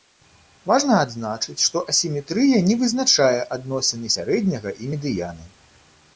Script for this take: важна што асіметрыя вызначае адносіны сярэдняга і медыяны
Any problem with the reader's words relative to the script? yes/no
yes